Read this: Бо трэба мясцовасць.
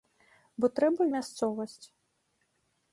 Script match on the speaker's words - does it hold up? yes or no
yes